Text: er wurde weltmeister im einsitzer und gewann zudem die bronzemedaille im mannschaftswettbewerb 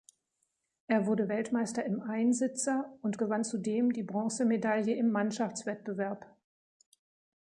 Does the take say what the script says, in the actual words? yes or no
yes